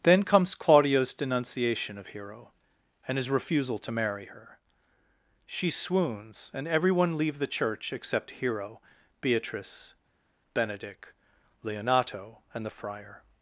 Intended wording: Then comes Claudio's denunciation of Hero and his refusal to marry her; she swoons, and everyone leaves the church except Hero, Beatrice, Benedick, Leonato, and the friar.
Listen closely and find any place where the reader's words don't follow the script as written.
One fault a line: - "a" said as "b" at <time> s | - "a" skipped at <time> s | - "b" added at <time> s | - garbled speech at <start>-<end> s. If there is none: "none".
- "leaves" said as "leave" at 7.2 s